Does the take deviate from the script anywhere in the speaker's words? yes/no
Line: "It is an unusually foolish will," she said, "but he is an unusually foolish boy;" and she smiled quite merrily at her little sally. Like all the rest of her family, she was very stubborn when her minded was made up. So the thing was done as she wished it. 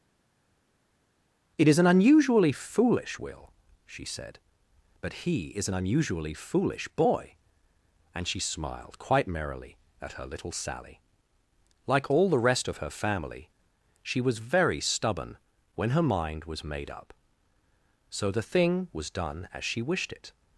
yes